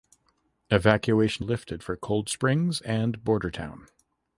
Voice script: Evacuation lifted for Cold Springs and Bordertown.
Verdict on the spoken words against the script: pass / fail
pass